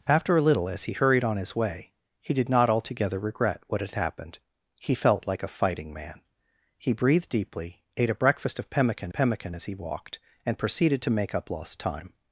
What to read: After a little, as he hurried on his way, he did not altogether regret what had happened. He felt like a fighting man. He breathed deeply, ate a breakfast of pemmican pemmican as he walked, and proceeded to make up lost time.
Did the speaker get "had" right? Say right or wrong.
right